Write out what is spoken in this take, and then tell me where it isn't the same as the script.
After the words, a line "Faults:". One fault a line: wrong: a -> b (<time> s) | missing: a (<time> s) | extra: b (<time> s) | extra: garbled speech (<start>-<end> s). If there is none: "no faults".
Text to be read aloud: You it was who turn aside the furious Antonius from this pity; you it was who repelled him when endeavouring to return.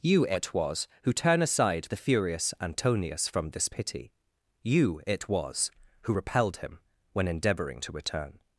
You it was who turn aside the furious Antonius from this pity; you it was who repelled him when endeavouring to return.
Faults:
no faults